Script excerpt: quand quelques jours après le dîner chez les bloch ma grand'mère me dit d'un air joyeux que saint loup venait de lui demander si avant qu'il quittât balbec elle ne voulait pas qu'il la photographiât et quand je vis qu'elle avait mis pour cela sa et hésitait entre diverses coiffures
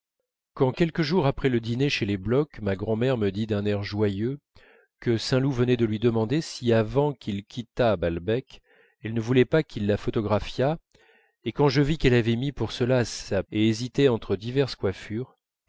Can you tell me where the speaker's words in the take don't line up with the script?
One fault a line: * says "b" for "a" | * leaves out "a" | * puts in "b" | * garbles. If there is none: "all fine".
all fine